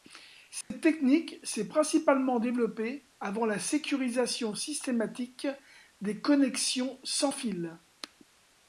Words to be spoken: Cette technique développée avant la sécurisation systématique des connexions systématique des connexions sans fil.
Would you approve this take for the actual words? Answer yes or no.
no